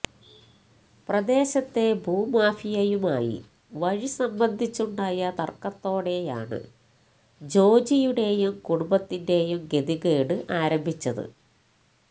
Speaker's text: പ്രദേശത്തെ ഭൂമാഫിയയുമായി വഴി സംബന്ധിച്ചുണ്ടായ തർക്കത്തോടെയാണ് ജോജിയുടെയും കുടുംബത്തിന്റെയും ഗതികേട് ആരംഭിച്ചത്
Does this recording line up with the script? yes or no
yes